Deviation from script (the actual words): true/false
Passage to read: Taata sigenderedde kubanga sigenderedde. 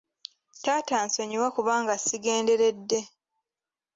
true